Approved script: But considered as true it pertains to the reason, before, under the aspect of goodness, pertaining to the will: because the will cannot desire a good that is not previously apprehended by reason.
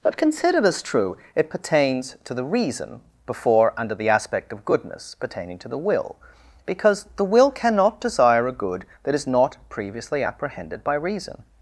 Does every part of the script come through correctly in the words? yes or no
yes